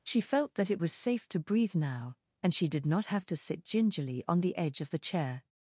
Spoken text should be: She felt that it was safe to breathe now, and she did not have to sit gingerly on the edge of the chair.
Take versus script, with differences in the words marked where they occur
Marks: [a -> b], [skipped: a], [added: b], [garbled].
She felt that it was safe to breathe now, and she did not have to sit gingerly on the edge of the chair.